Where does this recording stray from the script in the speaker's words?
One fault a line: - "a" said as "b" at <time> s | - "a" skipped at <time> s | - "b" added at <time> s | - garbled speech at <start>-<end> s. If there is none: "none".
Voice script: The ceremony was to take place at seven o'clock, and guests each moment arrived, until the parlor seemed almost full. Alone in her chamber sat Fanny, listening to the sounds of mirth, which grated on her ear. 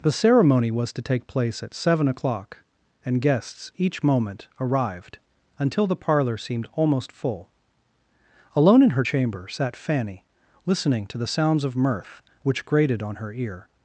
none